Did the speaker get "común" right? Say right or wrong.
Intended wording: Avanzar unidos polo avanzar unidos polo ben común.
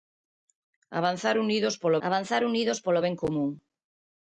right